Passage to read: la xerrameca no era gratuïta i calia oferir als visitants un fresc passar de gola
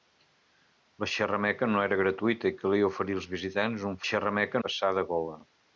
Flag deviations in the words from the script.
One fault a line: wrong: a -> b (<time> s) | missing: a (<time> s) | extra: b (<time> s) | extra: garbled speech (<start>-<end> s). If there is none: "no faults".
wrong: fresc -> xerrameca (4.1 s)